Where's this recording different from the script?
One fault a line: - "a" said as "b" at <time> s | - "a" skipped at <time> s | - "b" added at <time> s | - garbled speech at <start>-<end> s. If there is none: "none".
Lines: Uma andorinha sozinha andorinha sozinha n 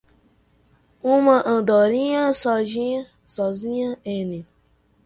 - "andorinha sozinha" skipped at 4.0 s